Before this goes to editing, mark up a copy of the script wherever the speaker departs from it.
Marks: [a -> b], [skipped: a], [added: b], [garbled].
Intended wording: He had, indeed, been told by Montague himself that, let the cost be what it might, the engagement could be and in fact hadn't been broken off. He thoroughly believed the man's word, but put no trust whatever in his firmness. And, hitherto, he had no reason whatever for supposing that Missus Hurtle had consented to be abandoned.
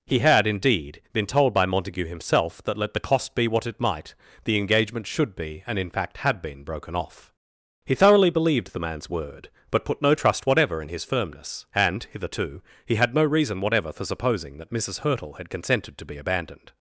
He had, indeed, been told by Montague himself that, let the cost be what it might, the engagement [could -> should] be and in fact [hadn't -> had] been broken off. He thoroughly believed the man's word, but put no trust whatever in his firmness. And, hitherto, he had no reason whatever for supposing that Missus Hurtle had consented to be abandoned.